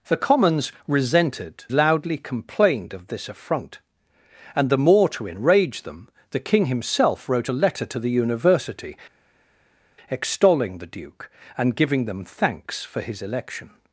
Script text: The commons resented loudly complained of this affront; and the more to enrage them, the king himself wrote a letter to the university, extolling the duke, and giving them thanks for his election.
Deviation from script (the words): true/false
false